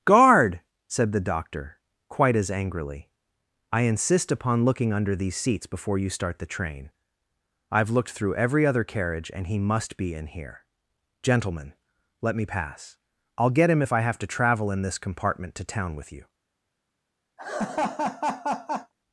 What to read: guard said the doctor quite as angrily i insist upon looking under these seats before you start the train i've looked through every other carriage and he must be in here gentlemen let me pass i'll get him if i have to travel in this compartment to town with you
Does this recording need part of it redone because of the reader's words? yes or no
no